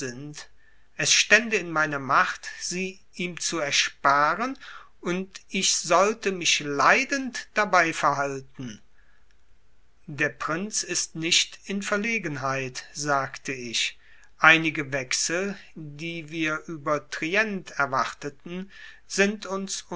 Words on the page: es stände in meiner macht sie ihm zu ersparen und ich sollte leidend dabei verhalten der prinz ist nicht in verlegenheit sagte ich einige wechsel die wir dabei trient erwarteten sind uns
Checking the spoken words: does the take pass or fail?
fail